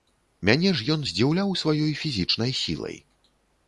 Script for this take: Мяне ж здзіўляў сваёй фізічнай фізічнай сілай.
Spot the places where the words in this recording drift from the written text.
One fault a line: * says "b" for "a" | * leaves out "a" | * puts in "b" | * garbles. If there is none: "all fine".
* puts in "ён"
* leaves out "фізічнай"